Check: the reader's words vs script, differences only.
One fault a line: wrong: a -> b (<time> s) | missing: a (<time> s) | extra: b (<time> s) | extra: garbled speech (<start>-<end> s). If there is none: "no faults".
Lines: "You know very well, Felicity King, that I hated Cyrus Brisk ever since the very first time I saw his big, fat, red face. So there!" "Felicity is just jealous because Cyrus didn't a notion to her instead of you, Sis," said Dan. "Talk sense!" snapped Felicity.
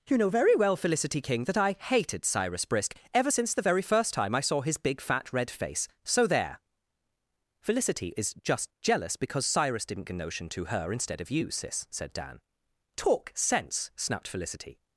no faults